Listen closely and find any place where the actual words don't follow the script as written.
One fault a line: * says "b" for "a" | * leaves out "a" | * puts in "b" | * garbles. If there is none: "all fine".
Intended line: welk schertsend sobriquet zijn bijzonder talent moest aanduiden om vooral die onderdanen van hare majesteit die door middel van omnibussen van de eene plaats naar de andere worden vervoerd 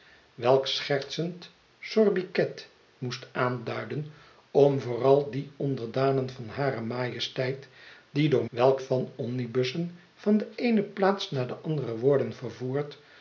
* leaves out "zijn bijzonder talent"
* says "welk" for "middel"